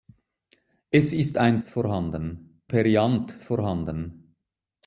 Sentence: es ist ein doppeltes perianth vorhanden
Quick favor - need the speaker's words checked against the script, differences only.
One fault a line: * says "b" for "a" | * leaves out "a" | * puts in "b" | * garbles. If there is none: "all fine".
* says "vorhanden" for "doppeltes"